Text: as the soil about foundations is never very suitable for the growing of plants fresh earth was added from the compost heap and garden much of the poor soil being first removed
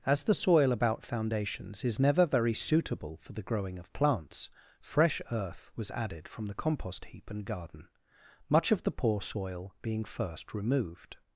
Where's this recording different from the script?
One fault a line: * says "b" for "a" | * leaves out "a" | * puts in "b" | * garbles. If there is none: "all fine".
all fine